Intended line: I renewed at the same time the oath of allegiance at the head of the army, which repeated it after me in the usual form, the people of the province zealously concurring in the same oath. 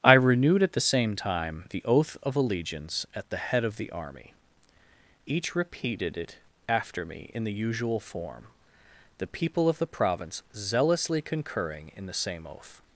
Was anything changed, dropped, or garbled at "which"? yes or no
yes